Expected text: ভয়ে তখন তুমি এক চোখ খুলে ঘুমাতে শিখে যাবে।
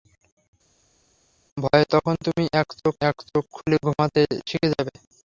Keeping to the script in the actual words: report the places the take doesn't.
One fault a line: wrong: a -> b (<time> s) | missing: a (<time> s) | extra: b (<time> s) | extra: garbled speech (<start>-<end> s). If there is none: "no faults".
extra: এক চোখ (3.0 s)